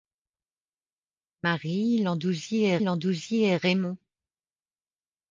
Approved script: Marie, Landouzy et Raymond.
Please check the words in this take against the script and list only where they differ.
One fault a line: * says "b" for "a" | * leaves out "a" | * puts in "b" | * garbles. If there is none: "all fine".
* puts in "Landouzy et"